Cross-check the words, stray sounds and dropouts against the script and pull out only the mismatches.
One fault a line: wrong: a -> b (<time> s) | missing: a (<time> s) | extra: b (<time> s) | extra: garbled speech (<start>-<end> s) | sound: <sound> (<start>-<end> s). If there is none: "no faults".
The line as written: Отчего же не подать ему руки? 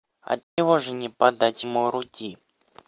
sound: dropout (0.4-0.6 s)